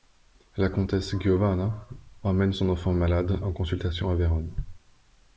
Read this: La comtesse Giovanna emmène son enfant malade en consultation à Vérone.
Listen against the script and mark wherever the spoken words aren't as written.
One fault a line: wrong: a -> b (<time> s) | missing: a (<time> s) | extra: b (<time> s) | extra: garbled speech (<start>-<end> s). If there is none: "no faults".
no faults